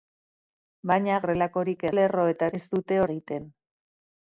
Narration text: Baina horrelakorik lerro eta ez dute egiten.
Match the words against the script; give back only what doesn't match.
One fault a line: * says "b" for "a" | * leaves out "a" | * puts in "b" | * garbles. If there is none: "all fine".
all fine